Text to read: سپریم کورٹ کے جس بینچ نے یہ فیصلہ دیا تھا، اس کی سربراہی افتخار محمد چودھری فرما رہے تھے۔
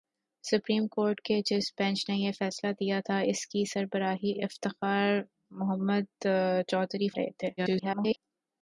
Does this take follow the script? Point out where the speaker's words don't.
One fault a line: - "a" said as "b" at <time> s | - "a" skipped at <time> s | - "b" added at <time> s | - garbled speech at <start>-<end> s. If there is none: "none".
- "فرما" skipped at 7.1 s
- garbled speech at 7.6-8.2 s